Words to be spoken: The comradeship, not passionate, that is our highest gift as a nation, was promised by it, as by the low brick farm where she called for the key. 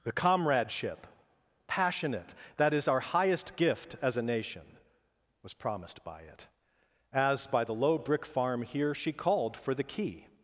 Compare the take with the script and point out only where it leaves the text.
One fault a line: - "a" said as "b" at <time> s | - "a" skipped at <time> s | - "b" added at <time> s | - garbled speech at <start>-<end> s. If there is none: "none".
- "not" skipped at 1.1 s
- "where" said as "here" at 8.6 s